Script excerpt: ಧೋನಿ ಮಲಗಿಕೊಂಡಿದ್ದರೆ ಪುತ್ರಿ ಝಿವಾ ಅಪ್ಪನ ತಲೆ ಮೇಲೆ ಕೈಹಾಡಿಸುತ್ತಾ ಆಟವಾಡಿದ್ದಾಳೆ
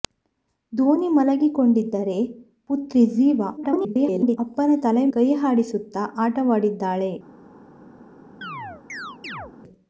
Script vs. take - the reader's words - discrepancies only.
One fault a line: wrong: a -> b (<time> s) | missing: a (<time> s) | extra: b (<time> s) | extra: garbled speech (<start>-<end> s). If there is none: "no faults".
extra: garbled speech (3.6-4.4 s)
missing: ಮೇಲೆ (5.0 s)